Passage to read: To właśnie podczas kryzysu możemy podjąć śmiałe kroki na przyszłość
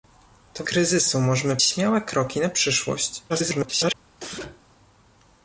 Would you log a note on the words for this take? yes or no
yes